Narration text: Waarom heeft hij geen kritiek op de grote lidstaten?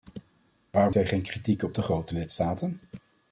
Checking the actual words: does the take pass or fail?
fail